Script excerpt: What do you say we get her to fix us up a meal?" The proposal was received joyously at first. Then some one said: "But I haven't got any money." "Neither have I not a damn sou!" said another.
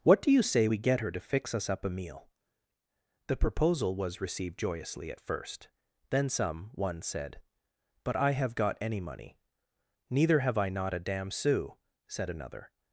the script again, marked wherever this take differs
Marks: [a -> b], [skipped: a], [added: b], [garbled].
What do you say we get her to fix us up a meal?" The proposal was received joyously at first. Then some one said: "But I [haven't -> have] got any money." "Neither have I not a damn sou!" said another.